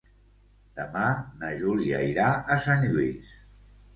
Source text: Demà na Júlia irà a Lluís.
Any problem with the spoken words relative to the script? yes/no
yes